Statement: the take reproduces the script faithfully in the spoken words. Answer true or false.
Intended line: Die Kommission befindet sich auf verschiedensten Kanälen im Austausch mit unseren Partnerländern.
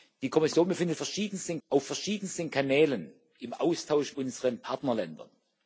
false